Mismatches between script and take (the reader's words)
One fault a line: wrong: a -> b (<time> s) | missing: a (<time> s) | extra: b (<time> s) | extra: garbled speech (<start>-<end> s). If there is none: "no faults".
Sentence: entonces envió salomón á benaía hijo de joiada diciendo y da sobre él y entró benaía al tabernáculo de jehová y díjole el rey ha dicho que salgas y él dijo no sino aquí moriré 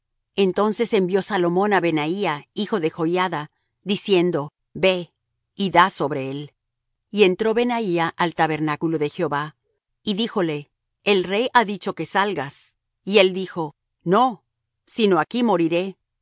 extra: ve (4.7 s)